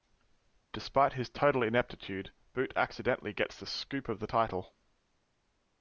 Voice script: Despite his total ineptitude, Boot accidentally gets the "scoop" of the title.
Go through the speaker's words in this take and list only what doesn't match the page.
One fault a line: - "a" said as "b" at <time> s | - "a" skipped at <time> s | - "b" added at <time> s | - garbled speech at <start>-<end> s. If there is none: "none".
none